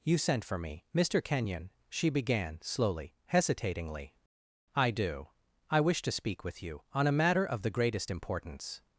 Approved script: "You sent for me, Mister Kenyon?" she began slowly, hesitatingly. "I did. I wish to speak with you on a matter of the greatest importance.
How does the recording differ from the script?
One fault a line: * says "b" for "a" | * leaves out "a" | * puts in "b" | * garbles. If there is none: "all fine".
* says "do" for "did"